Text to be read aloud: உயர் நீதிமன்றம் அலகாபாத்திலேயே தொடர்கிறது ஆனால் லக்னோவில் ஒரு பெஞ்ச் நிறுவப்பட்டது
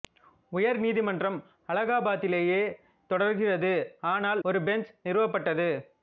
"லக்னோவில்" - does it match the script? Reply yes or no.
no